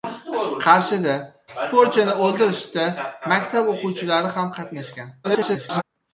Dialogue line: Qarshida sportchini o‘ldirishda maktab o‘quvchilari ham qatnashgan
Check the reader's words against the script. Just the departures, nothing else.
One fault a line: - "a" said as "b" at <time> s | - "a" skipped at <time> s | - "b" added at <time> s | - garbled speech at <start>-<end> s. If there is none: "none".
- garbled speech at 5.2-5.8 s